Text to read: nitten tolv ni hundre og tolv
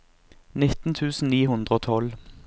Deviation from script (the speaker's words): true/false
true